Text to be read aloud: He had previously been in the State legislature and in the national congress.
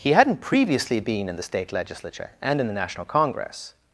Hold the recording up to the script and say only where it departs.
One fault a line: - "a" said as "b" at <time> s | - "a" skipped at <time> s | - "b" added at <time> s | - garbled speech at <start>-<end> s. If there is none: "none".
- "had" said as "hadn't" at 0.1 s